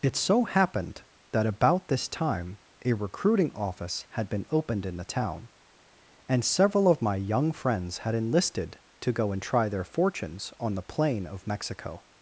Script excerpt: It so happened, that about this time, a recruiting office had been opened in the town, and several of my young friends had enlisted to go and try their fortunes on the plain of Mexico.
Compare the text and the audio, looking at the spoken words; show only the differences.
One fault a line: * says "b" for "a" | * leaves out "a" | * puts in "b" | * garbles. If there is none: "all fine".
all fine